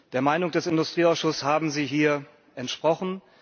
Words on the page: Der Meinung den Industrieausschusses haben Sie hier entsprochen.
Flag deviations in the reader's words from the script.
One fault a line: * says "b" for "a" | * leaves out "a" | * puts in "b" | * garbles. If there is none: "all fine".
* says "des" for "den"